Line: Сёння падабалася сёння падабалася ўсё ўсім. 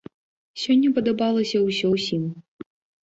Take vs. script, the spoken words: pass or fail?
fail